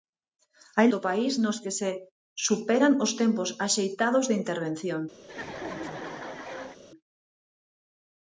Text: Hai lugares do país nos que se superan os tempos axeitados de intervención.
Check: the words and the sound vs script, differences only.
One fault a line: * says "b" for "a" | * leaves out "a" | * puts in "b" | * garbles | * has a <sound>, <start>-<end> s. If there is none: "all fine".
* leaves out "lugares"
* has a laugh, 5.2-6.8 s